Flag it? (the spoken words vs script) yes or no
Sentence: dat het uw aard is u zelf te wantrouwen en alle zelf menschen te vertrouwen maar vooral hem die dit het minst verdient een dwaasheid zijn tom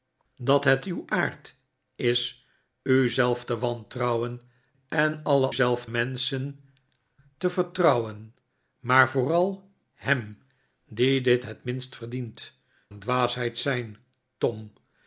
no